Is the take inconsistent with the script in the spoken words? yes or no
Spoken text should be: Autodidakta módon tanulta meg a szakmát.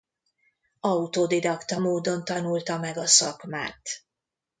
no